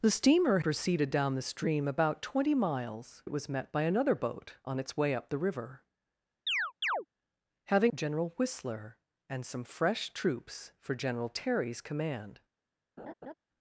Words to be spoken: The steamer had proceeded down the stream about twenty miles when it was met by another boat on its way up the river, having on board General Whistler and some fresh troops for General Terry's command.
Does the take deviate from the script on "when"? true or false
true